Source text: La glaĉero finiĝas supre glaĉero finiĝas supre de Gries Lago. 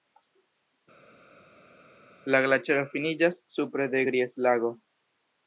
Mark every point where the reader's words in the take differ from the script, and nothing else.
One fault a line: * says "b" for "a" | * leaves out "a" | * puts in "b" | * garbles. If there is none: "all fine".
* leaves out "glaĉero finiĝas supre"